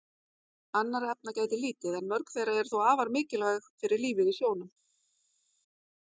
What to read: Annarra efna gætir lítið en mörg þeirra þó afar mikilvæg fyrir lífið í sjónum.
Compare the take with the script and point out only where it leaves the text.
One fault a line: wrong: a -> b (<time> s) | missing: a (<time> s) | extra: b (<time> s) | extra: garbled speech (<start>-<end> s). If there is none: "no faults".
extra: eru (2.6 s)